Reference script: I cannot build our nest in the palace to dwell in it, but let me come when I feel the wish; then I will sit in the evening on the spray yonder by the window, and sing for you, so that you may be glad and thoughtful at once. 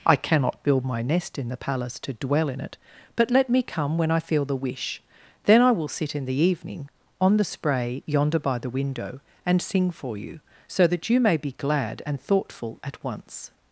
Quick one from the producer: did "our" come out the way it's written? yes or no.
no